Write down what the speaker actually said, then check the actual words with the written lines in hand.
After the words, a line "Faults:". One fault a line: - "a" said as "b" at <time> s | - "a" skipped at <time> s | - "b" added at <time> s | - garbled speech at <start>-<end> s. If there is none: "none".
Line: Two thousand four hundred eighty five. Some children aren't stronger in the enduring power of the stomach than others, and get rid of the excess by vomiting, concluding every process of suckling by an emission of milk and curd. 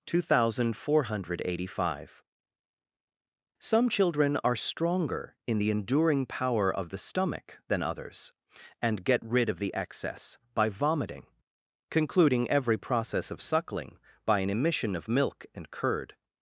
Two thousand four hundred eighty five. Some children are stronger in the enduring power of the stomach than others, and get rid of the excess by vomiting, concluding every process of suckling by an emission of milk and curd.
Faults:
- "aren't" said as "are" at 4.4 s